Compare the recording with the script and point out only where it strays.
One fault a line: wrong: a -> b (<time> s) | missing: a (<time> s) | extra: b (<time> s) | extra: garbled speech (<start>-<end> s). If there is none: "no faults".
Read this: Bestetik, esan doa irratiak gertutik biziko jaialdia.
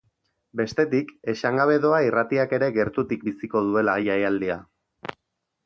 extra: gabe (1.6 s)
extra: ere (2.6 s)
extra: duela (3.7 s)